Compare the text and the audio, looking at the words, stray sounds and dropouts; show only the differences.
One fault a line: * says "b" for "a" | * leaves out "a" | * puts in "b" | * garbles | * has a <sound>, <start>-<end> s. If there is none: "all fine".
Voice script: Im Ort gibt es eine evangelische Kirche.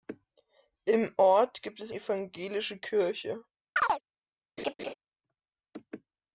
* leaves out "eine"
* has a chirp, 3.8-4.0 s
* has a laugh, 4.6-4.9 s